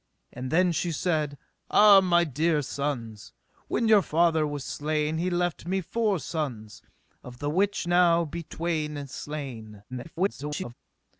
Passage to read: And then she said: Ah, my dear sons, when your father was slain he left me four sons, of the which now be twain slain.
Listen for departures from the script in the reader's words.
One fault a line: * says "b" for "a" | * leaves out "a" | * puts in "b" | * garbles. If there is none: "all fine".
* garbles